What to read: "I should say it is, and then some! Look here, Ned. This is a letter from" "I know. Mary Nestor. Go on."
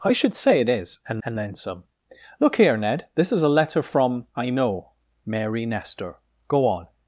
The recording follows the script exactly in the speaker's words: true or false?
false